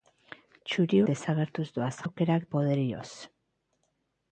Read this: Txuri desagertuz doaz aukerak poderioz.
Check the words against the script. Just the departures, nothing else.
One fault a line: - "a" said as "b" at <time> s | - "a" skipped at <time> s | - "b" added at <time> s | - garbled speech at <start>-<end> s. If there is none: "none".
none